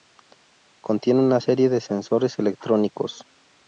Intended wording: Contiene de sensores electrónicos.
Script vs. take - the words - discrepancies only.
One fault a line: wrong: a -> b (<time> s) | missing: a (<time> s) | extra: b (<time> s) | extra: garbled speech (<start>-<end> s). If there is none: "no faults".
extra: una serie (1.2 s)